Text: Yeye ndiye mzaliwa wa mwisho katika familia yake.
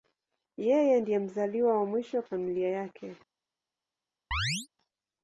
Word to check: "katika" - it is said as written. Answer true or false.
false